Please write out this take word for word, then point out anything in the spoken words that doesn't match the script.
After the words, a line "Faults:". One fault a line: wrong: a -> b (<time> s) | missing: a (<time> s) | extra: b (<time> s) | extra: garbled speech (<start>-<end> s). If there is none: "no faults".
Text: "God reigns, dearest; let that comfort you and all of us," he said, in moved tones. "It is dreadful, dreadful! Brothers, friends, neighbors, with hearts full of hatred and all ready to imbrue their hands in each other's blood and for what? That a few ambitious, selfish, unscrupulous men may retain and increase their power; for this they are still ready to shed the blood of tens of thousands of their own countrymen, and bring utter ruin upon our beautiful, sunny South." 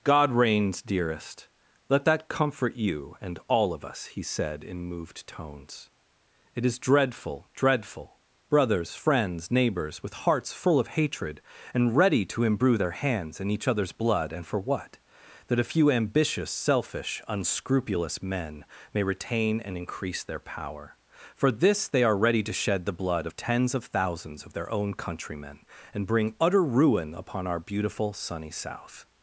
"God reigns, dearest; let that comfort you and all of us," he said, in moved tones. "It is dreadful, dreadful! Brothers, friends, neighbors, with hearts full of hatred and ready to imbrue their hands in each other's blood and for what? That a few ambitious, selfish, unscrupulous men may retain and increase their power; for this they are ready to shed the blood of tens of thousands of their own countrymen, and bring utter ruin upon our beautiful, sunny South."
Faults:
missing: all (11.9 s)
missing: still (22.2 s)